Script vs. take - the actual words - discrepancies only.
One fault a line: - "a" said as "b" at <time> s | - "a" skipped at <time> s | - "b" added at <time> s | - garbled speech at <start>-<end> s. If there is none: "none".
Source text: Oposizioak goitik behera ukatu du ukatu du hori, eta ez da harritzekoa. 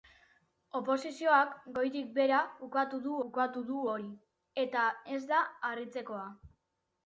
none